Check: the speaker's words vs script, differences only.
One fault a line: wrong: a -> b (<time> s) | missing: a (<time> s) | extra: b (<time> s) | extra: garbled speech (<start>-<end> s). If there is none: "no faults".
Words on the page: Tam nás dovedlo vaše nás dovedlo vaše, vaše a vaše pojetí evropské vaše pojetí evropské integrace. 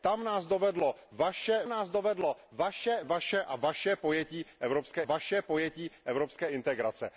no faults